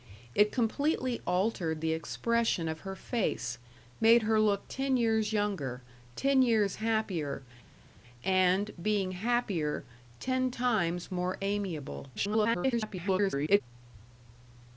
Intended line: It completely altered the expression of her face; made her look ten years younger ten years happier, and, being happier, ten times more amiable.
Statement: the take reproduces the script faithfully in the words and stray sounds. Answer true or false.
false